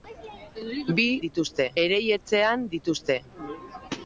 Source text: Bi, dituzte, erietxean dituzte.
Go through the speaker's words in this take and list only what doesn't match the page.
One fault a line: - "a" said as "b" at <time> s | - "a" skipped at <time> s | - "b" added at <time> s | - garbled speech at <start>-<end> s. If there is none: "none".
none